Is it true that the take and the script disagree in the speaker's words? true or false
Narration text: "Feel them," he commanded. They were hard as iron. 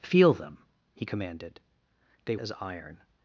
true